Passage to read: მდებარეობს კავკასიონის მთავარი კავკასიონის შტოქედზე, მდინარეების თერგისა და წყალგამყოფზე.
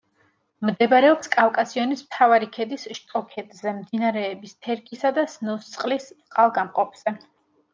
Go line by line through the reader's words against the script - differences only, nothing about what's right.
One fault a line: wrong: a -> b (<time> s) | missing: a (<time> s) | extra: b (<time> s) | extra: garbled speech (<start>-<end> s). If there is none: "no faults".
wrong: კავკასიონის -> ქედის (2.5 s)
extra: სნოსწყლის (5.3 s)